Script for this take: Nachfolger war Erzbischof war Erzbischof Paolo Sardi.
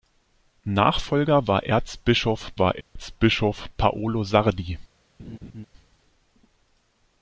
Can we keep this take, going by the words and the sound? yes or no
no